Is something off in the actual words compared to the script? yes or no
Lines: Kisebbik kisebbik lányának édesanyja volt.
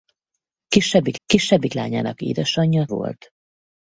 no